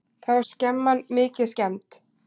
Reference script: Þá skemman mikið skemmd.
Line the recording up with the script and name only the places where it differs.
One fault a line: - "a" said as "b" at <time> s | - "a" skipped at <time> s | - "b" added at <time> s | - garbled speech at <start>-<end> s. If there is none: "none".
none